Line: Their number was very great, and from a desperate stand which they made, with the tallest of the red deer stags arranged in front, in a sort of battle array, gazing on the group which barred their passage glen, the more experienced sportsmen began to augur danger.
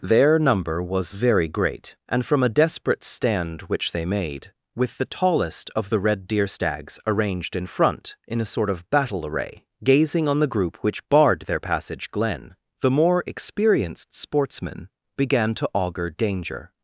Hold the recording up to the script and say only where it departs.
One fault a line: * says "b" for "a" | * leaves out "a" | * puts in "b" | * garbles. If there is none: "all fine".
all fine